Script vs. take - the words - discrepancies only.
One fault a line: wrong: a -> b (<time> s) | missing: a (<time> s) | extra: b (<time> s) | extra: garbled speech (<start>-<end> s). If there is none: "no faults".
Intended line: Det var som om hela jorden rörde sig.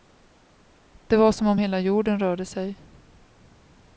no faults